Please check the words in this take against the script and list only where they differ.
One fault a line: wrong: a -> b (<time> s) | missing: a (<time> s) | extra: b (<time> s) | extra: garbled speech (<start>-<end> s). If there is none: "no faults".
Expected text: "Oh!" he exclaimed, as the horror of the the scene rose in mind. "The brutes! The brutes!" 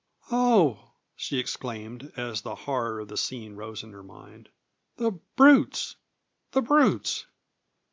wrong: he -> she (1.1 s)
missing: the (3.2 s)
extra: her (3.9 s)